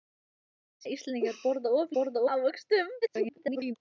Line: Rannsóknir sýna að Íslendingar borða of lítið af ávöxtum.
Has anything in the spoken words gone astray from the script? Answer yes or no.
yes